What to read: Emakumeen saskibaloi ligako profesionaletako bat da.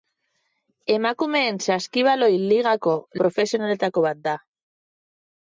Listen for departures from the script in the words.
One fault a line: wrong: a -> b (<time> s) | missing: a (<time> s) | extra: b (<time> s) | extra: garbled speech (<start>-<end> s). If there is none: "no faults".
no faults